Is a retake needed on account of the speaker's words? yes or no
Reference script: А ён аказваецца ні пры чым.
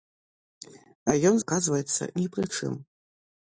no